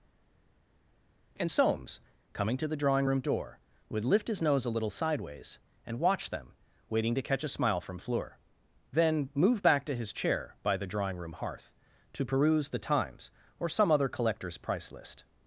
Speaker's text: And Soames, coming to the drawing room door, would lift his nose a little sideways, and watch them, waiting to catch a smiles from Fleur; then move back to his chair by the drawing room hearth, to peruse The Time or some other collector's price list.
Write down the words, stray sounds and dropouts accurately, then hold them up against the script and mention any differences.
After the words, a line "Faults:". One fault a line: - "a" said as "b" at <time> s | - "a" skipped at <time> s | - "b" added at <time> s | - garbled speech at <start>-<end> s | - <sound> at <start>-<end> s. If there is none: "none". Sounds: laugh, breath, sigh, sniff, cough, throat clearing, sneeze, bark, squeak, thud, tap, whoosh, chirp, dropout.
And Soames, coming to the drawing room door, would lift his nose a little sideways, and watch them, waiting to catch a smile from Fleur; then move back to his chair by the drawing room hearth, to peruse The Times or some other collector's price list.
Faults:
- "smiles" said as "smile" at 7.5 s
- "Time" said as "Times" at 12.8 s